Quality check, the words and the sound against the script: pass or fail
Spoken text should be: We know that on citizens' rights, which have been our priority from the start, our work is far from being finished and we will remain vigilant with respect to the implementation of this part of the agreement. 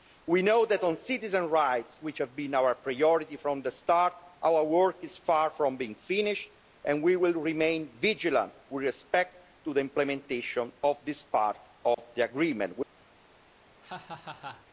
fail